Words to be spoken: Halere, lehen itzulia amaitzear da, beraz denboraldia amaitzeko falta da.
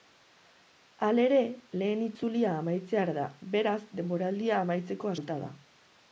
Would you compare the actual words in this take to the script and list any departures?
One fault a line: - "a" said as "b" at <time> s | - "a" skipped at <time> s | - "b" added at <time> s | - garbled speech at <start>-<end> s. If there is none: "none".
none